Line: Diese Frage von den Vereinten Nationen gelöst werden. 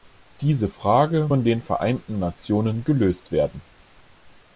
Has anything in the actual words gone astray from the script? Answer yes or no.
no